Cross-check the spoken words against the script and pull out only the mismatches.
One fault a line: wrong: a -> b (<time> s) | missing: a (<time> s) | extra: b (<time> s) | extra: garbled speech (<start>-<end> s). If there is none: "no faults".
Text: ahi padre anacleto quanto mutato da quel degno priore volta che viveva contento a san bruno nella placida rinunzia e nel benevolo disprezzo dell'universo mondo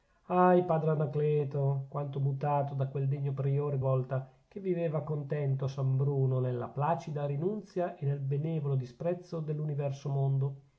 no faults